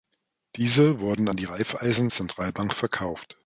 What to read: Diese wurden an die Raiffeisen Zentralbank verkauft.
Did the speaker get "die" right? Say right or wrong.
right